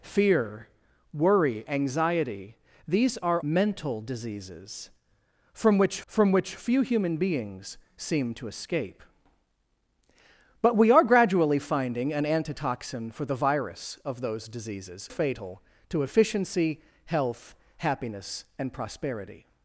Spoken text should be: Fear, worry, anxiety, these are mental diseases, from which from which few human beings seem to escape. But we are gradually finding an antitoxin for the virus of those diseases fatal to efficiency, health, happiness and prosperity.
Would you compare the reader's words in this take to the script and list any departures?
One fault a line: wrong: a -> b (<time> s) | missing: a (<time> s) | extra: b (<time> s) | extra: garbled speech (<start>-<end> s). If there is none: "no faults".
no faults